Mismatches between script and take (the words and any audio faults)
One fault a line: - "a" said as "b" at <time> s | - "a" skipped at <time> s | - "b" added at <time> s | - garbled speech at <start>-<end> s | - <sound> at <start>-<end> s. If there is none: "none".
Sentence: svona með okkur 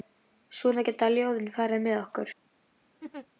- "geta ljóðin farið" added at 0.9 s
- laugh at 3.0-3.3 s